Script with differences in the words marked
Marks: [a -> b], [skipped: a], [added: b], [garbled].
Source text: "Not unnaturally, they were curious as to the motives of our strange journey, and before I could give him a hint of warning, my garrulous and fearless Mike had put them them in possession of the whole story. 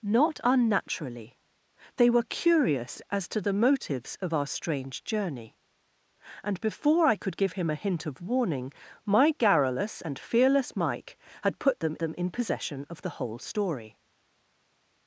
"Not unnaturally, they were curious as to the motives of our strange journey, and before I could give him a hint of warning, my garrulous and fearless Mike had put them them in possession of the whole story.